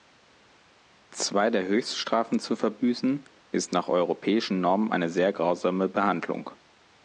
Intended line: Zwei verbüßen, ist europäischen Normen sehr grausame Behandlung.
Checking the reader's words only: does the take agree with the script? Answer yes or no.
no